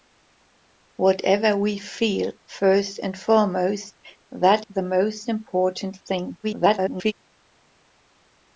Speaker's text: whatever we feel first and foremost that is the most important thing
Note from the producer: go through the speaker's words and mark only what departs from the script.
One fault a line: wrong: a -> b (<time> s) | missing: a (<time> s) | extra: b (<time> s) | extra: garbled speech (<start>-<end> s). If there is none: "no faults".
missing: is (4.7 s)
extra: garbled speech (6.4-7.1 s)